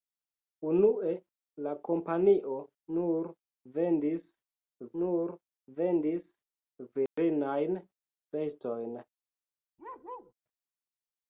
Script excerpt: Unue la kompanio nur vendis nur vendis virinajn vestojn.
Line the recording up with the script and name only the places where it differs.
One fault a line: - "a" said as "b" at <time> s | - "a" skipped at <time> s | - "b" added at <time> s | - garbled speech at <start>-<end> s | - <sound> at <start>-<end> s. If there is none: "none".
- dropout at 7.1-7.2 s
- bark at 9.8-10.3 s